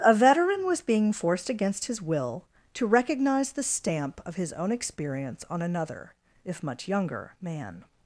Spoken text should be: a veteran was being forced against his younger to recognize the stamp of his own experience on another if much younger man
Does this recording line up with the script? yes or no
no